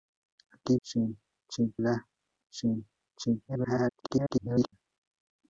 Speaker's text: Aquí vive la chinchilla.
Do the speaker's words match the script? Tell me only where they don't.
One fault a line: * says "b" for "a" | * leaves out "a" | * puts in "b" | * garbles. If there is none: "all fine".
* says "chinchilla" for "vive"
* garbles